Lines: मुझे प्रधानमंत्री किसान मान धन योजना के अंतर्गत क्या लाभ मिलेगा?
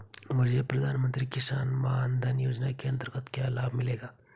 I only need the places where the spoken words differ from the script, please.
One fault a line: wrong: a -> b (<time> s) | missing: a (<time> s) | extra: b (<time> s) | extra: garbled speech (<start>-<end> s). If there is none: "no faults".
no faults